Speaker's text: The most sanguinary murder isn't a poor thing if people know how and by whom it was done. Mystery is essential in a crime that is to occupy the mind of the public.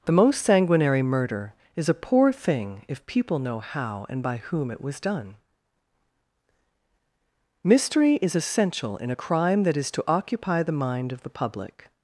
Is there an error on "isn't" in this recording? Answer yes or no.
yes